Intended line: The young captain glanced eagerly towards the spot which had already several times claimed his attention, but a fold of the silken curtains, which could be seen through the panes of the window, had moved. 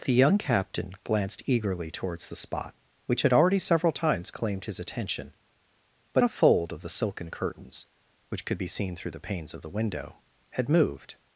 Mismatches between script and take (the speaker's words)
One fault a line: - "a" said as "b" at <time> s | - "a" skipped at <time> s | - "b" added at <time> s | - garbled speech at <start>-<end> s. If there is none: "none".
none